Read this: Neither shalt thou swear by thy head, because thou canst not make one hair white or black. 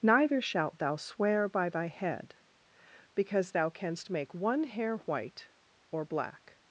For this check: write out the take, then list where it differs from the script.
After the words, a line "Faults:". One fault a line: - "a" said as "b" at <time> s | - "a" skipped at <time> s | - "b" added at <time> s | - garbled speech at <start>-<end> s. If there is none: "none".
Neither shalt thou swear by thy head, because thou canst make one hair white or black.
Faults:
- "not" skipped at 4.1 s